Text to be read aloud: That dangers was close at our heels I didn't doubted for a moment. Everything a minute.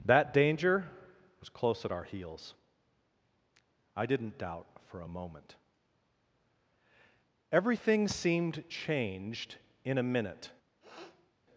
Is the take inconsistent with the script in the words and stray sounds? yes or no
yes